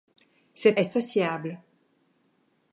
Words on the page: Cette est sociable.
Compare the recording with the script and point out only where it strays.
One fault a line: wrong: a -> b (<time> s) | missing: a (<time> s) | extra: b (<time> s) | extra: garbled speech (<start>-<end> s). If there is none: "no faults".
no faults